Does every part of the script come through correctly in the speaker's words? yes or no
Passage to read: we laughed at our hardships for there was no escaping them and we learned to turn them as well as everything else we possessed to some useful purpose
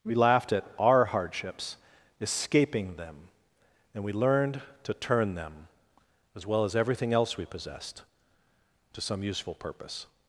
no